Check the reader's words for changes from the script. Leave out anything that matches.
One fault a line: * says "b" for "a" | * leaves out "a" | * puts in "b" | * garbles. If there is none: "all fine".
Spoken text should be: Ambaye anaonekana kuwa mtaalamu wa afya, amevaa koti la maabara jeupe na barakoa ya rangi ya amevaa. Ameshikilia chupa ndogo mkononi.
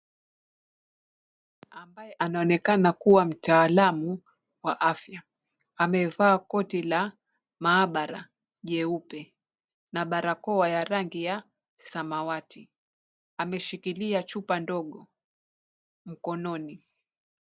* says "samawati" for "amevaa"